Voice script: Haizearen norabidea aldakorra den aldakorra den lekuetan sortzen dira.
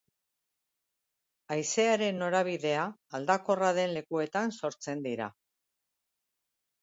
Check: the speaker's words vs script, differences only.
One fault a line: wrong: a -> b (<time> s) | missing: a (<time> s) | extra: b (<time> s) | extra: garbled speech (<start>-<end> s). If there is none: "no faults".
missing: aldakorra den (4.0 s)